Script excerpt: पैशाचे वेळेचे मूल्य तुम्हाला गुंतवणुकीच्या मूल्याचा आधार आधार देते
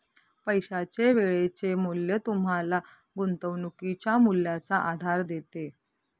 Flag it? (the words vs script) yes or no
yes